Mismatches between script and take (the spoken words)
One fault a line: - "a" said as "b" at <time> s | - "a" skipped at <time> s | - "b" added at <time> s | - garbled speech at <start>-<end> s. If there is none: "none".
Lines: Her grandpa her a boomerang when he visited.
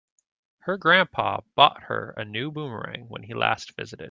- "bought" added at 1.5 s
- "new" added at 2.2 s
- "last" added at 3.3 s